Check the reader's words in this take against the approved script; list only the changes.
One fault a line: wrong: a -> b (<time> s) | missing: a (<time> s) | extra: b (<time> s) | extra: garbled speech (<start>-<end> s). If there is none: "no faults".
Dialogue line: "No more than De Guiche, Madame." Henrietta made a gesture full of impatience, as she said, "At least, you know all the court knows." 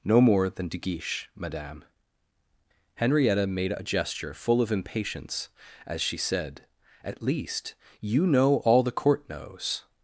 no faults